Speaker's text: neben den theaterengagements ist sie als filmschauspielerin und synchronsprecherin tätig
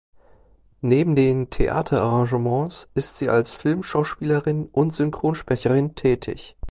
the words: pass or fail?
pass